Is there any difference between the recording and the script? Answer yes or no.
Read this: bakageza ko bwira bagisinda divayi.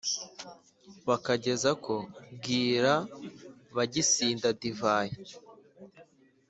no